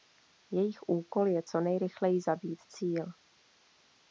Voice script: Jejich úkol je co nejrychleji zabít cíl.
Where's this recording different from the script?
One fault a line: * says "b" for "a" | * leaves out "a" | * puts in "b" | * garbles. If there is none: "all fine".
all fine